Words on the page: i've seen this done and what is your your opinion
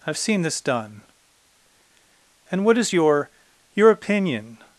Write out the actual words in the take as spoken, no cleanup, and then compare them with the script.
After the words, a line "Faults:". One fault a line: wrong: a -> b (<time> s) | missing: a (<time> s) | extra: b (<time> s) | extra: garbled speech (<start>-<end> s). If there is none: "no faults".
i've seen this done and what is your your opinion
Faults:
no faults